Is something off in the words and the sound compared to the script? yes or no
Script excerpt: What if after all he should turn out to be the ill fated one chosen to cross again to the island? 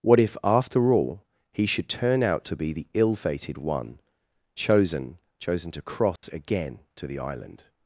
yes